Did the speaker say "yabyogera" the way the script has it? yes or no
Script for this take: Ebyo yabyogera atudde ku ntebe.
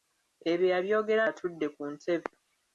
yes